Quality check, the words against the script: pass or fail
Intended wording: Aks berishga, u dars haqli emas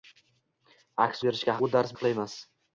pass